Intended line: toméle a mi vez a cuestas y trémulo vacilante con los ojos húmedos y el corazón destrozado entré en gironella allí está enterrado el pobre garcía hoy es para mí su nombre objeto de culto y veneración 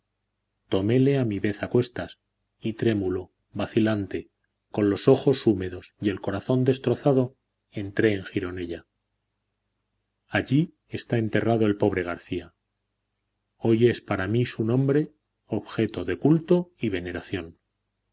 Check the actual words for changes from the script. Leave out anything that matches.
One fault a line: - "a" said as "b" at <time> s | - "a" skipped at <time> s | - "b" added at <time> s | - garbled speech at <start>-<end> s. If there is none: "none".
none